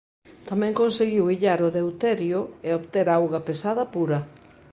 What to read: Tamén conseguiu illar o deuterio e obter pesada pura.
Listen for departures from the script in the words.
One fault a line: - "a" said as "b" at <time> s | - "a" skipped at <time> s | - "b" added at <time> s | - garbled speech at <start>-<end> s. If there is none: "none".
- "auga" added at 3.1 s